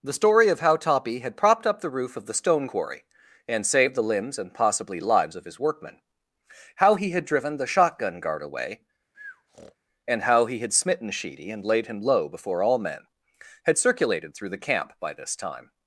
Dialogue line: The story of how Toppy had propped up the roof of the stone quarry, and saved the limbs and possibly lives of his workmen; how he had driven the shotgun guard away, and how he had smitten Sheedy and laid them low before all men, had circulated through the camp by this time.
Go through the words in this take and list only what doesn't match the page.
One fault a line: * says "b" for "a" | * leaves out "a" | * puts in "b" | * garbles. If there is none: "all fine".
* says "him" for "them"